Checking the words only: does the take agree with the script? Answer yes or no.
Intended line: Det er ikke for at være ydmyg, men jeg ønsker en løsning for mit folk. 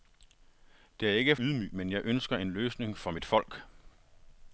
no